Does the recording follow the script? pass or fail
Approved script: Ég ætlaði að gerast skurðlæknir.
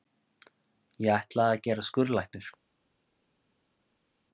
pass